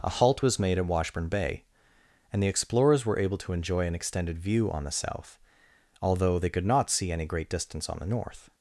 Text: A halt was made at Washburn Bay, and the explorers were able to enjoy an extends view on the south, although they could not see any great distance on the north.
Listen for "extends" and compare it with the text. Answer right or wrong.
wrong